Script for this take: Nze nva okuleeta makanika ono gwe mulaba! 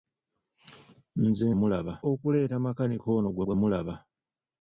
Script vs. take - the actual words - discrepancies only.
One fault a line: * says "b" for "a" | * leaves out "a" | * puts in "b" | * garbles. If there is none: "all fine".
* says "mulaba" for "nva"
* puts in "gwe"